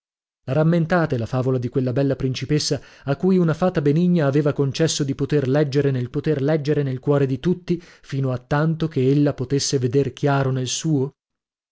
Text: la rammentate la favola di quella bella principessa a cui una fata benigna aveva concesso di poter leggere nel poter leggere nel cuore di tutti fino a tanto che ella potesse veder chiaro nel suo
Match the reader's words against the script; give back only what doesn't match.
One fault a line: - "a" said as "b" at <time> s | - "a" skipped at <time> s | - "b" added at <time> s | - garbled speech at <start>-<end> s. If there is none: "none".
none